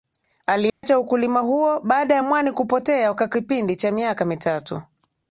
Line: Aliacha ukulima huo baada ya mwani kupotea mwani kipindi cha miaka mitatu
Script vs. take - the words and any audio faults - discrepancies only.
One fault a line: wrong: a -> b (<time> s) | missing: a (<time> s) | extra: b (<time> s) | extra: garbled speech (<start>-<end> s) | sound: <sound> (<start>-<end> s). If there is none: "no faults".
sound: dropout (0.7-0.8 s)
wrong: mwani -> kwa (3.1 s)